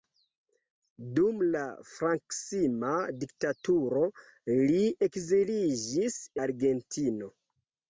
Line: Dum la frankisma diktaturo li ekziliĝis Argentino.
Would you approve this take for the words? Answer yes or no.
yes